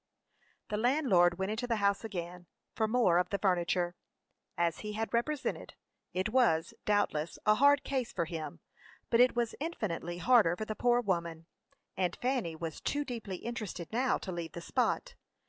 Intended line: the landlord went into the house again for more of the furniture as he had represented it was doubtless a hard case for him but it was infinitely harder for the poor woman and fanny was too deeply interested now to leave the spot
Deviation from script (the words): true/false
false